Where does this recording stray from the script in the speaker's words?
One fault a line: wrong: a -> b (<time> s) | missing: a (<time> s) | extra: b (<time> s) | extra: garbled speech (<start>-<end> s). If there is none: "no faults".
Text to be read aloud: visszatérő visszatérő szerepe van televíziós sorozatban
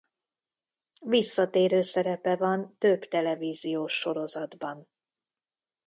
missing: visszatérő (1.8 s)
extra: több (2.8 s)